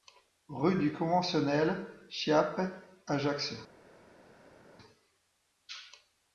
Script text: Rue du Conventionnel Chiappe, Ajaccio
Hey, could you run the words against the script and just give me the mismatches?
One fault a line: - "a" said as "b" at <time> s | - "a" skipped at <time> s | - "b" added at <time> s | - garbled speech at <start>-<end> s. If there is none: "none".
none